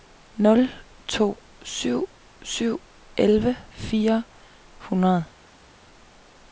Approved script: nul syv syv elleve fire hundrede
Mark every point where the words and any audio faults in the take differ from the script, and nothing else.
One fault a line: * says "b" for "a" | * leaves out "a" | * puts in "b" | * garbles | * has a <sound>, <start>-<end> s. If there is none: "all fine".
* puts in "to"